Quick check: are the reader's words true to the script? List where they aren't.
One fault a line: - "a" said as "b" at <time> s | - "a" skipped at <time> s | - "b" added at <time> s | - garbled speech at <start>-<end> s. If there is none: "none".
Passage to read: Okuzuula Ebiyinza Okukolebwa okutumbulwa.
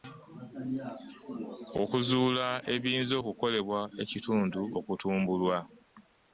- "ekitundu" added at 4.0 s